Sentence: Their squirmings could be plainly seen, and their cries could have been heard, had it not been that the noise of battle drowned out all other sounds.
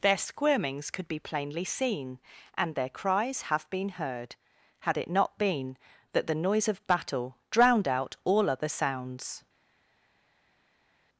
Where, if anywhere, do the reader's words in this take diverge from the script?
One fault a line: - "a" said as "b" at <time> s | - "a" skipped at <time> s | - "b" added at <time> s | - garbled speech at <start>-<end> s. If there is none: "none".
- "could" skipped at 3.4 s